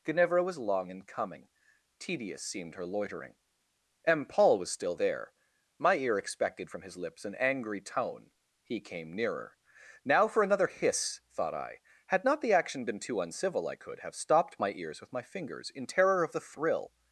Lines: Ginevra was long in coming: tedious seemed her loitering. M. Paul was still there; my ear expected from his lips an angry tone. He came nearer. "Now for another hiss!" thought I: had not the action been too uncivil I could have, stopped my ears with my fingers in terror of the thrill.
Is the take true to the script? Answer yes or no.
yes